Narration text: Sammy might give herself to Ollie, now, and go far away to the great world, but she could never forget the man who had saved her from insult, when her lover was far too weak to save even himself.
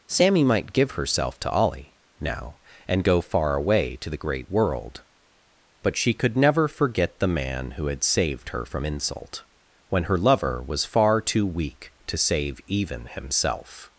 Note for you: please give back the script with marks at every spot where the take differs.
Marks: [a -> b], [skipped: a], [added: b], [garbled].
Sammy might give herself to Ollie, now, and go far away to the great world, but she could never forget the man who had saved her from insult, when her lover was far too weak to save even himself.